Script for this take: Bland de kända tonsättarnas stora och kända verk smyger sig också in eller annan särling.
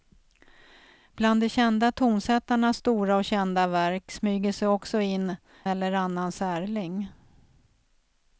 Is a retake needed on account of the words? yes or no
no